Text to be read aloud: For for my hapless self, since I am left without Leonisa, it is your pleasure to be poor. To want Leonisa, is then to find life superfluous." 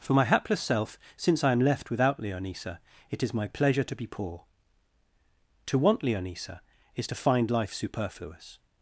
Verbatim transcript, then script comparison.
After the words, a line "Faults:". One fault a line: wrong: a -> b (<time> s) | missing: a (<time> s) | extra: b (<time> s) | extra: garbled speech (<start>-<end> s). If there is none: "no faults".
For my hapless self, since I am left without Leonisa, it is my pleasure to be poor. To want Leonisa, is to find life superfluous."
Faults:
missing: for (0.1 s)
wrong: your -> my (3.3 s)
missing: then (7.1 s)